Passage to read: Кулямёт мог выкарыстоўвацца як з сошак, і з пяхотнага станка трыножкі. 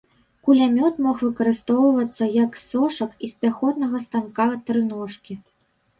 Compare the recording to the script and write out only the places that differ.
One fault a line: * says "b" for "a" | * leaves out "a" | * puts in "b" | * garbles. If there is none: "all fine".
all fine